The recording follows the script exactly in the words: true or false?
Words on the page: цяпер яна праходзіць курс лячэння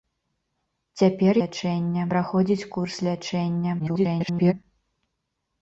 false